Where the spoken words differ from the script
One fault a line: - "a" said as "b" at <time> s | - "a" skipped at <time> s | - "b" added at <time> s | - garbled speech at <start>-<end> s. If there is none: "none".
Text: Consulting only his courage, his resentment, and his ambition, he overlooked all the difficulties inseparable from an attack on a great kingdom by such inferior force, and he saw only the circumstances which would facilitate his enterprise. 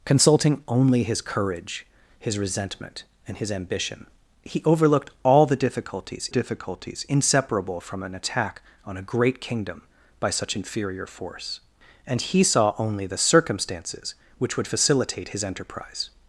- "difficulties" added at 6.3 s